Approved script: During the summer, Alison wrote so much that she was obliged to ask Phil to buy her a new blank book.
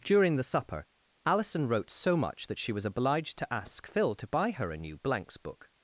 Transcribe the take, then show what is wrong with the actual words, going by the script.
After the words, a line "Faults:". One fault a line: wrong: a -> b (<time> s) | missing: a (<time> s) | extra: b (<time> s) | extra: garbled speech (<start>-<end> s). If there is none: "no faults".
During the supper, Alison wrote so much that she was obliged to ask Phil to buy her a new blanks book.
Faults:
wrong: summer -> supper (0.4 s)
wrong: blank -> blanks (5.0 s)